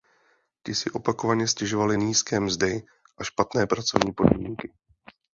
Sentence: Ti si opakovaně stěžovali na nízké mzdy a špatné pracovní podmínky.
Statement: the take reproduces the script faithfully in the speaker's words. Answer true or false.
false